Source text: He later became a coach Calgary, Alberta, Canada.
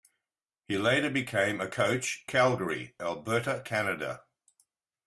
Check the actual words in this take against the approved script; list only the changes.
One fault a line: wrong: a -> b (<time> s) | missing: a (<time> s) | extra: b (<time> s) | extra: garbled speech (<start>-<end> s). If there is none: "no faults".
no faults